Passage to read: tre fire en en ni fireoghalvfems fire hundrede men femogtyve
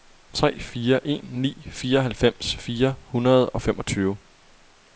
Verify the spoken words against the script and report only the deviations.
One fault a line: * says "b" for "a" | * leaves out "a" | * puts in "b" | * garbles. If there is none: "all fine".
* leaves out "en"
* says "og" for "men"